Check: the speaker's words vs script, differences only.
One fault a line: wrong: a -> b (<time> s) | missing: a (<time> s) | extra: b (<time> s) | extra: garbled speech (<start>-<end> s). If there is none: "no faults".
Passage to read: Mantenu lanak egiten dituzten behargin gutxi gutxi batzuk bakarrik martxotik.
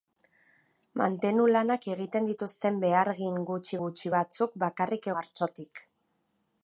no faults